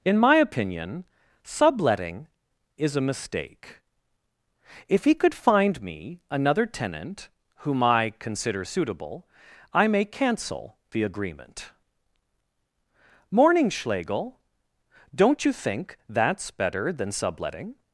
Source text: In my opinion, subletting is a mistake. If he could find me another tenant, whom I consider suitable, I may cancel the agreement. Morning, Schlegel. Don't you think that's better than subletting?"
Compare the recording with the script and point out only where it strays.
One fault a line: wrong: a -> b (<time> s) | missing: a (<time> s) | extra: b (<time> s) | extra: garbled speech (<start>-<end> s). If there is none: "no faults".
no faults